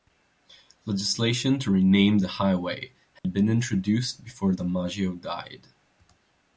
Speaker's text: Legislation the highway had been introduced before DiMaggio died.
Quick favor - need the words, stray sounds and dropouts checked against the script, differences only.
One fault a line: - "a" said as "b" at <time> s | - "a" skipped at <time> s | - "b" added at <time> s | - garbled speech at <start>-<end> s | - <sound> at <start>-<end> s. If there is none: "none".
- "to rename" added at 1.6 s
- dropout at 3.2-3.2 s